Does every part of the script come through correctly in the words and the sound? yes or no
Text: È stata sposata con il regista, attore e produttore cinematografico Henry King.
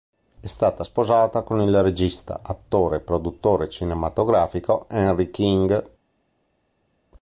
yes